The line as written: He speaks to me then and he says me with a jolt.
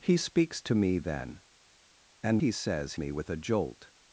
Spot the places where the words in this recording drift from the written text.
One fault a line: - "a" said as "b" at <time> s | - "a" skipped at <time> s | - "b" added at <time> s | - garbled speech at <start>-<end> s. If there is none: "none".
none